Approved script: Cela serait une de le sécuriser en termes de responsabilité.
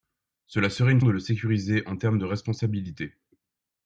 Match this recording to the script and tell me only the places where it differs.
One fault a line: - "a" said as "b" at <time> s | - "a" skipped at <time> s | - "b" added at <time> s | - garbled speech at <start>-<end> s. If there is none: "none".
none